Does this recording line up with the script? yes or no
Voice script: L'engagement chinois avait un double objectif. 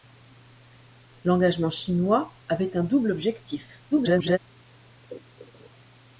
no